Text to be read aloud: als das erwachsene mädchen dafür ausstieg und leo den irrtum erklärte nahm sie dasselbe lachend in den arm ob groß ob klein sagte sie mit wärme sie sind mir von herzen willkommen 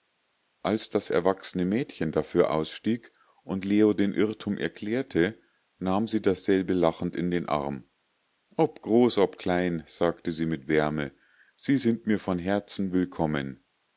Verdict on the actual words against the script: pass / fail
pass